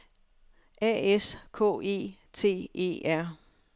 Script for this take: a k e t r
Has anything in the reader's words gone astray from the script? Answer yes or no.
yes